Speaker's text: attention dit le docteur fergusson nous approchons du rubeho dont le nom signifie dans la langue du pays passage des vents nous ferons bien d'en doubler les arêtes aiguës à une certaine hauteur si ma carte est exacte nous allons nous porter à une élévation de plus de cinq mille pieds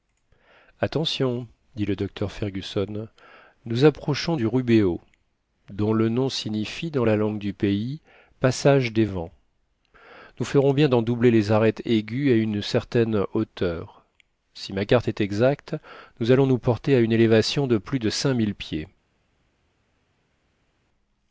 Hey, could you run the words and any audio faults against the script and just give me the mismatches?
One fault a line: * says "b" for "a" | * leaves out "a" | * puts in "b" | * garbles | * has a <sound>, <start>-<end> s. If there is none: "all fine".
all fine